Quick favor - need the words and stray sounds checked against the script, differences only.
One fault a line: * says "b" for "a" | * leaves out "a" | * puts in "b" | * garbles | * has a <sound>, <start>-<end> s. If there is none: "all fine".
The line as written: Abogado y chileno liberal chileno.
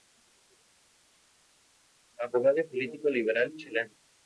* says "político" for "chileno"